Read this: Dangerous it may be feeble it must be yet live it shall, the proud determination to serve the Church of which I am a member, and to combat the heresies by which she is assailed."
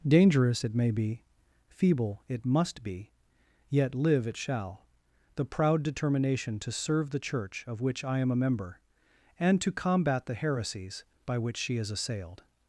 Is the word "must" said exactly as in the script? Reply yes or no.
yes